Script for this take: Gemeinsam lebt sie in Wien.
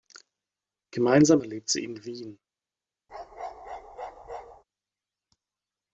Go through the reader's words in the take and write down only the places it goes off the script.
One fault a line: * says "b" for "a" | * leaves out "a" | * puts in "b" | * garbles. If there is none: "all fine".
all fine